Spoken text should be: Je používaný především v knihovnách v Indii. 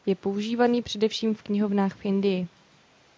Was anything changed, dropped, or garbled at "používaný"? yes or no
no